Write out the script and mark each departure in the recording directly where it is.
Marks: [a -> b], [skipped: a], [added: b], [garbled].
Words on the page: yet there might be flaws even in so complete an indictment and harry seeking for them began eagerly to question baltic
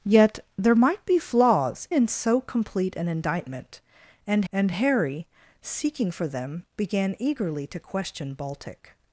yet there might be flaws [skipped: even] in so complete an indictment and [added: and] harry seeking for them began eagerly to question baltic